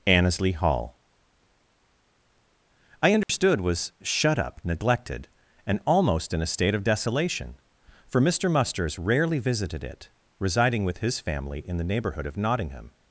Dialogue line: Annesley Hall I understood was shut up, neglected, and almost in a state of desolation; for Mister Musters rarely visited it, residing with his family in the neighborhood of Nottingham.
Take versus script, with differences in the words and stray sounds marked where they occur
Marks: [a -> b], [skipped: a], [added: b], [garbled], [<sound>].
Annesley Hall I understood [dropout] was shut up, neglected, and almost in a state of desolation; for Mister Musters rarely visited it, residing with his family in the neighborhood of Nottingham.